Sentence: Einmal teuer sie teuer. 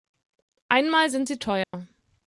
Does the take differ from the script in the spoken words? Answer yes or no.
yes